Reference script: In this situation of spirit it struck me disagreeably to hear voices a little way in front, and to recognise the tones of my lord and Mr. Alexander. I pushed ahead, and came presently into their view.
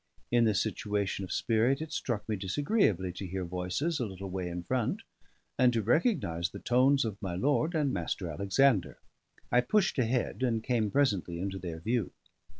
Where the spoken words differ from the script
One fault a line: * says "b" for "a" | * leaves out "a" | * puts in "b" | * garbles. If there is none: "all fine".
all fine